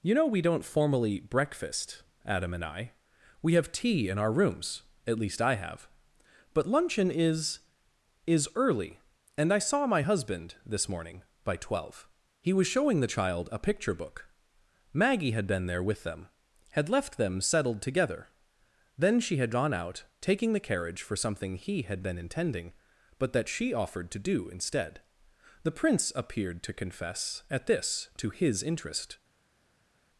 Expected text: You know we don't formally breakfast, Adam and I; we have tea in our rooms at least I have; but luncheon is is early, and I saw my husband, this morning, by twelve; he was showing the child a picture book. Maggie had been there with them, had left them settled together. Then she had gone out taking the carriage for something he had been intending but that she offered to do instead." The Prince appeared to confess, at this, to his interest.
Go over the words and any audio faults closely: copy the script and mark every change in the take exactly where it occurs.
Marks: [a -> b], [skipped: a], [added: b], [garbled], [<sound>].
You know we don't formally breakfast, Adam and I; we have tea in our rooms at least I have; but luncheon is is early, and I saw my husband, this morning, by twelve; he was showing the child a picture book. Maggie had been there with them, had left them settled together. Then she had gone out taking the carriage for something he had been intending but that she offered to do instead." The Prince appeared to confess, at this, to his interest.